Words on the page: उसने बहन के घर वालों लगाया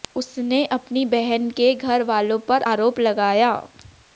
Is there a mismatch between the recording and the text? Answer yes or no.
yes